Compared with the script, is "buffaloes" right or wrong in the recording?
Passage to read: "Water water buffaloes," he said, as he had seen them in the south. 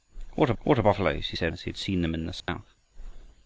right